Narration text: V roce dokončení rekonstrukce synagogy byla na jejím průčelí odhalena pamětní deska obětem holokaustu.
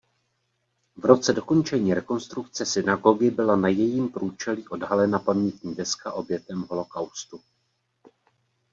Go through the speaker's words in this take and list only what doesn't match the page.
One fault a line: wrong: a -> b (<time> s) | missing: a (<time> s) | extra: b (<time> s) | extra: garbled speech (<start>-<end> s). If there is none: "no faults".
no faults